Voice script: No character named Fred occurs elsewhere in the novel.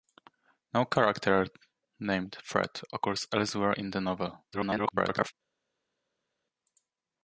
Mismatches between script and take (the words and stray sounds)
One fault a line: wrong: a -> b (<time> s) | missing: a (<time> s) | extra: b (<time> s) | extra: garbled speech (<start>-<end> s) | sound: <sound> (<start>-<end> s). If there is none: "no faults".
extra: garbled speech (4.5-5.3 s)